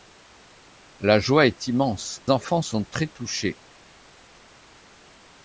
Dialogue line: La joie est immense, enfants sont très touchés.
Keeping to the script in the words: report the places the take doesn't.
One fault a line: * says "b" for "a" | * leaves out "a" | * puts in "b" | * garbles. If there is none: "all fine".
all fine